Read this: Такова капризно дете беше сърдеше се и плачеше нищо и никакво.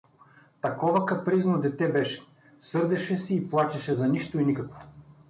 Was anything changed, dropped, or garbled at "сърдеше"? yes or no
no